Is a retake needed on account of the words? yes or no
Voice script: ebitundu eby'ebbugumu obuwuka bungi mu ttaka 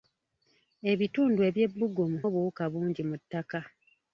no